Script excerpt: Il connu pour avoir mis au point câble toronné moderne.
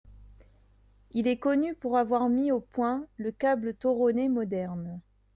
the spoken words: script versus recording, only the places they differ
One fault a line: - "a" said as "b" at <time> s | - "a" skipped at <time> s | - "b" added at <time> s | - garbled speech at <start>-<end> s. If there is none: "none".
- "est" added at 1.3 s
- "le" added at 3.2 s